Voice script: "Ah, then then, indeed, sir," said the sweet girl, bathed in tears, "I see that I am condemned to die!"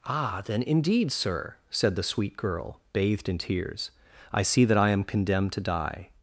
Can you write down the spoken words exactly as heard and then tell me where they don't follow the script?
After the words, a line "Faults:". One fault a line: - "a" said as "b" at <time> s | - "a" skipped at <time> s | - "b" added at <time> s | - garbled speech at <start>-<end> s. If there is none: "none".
"Ah, then, indeed, sir," said the sweet girl, bathed in tears, "I see that I am condemned to die!"
Faults:
- "then" skipped at 0.6 s